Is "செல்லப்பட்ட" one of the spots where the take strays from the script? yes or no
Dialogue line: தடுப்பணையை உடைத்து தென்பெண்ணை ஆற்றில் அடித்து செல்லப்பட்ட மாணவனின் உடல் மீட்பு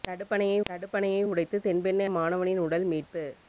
yes